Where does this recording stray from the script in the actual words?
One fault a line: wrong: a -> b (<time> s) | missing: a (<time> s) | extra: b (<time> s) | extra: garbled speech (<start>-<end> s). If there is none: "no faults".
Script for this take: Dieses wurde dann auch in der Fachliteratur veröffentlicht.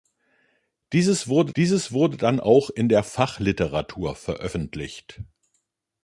extra: dieses wurde (1.6 s)